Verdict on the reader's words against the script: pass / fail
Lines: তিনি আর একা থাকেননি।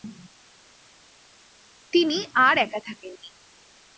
pass